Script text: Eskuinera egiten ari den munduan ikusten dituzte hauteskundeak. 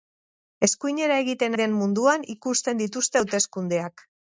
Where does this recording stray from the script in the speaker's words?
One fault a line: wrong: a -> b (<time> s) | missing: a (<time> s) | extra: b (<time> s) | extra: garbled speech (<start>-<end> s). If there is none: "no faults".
missing: ari (1.6 s)